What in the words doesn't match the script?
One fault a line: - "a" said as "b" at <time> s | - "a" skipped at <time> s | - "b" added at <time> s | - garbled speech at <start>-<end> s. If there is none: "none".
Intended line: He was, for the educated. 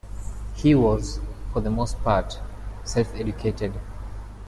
- "most part self" added at 1.7 s